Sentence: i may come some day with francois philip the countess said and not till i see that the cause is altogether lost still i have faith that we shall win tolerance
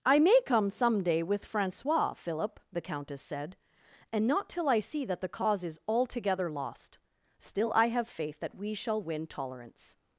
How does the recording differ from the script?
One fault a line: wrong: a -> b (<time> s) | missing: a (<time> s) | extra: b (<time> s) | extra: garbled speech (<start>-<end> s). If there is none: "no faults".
no faults